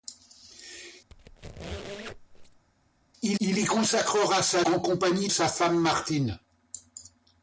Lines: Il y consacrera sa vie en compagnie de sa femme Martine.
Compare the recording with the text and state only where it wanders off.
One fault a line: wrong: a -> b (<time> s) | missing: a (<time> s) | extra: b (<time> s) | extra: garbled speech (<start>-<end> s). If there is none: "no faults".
extra: il (3.4 s)
missing: vie (4.6 s)
missing: de (5.3 s)